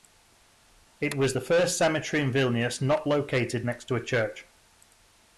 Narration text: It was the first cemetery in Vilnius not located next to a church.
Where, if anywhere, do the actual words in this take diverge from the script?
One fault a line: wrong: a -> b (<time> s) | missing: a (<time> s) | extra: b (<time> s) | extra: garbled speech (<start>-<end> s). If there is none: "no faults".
no faults